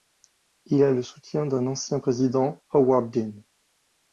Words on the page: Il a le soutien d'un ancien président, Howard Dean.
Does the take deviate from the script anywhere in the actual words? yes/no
no